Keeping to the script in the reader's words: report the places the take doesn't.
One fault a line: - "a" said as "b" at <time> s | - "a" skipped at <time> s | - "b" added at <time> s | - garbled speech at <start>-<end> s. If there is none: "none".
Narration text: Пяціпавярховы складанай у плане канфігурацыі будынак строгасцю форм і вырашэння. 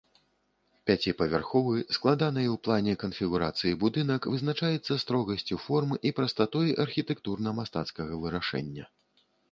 - "вызначаецца" added at 4.3 s
- "прастатой архітэктурна мастацкага" added at 6.2 s